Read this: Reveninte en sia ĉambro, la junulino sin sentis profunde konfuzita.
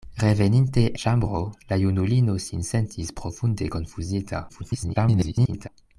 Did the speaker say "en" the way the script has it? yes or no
no